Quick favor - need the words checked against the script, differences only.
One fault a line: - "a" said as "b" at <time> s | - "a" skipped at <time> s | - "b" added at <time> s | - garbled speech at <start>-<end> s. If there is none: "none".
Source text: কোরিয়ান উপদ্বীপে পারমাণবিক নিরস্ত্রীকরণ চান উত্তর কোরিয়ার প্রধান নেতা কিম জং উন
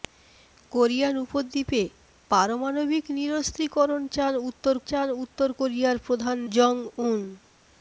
- "চান উত্তর" added at 4.8 s
- "নেতা কিম" skipped at 6.4 s